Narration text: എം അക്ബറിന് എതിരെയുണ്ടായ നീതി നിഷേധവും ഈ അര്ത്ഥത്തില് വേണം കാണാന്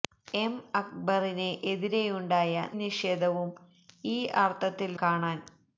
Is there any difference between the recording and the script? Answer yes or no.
yes